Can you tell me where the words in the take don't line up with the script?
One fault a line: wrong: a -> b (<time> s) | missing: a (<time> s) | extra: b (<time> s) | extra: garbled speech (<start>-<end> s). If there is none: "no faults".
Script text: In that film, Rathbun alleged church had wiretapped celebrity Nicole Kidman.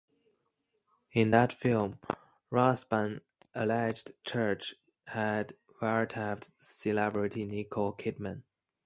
no faults